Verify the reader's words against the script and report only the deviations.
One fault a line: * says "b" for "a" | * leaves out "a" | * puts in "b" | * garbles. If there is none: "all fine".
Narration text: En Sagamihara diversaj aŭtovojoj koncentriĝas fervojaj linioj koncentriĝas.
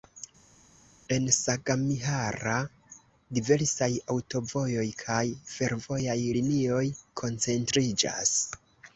* says "kaj" for "koncentriĝas"